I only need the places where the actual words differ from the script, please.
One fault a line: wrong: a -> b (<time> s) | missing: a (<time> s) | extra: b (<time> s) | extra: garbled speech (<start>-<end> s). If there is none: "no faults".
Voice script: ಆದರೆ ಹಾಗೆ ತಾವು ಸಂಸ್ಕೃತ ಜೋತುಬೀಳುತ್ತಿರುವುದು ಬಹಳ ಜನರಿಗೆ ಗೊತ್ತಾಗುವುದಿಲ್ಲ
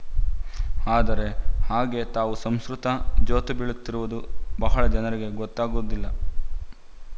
no faults